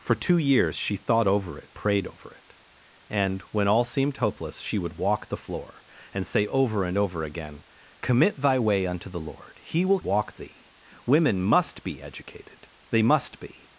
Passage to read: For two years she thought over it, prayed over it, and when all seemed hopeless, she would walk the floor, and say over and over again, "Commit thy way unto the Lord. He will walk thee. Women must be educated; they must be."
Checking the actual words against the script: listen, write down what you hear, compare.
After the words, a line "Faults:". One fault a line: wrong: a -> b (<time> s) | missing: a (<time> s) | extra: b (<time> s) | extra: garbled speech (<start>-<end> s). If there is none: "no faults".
For two years she thought over it, prayed over it, and when all seemed hopeless, she would walk the floor, and say over and over again, "Commit thy way unto the Lord. He will walk thee. Women must be educated; they must be."
Faults:
no faults